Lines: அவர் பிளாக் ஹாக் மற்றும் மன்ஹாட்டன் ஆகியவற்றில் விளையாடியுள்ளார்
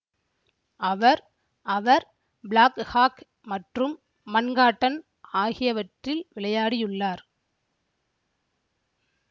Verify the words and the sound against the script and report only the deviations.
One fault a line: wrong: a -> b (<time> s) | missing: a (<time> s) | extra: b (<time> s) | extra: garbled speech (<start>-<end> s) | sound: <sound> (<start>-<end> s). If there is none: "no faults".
extra: அவர் (1.6 s)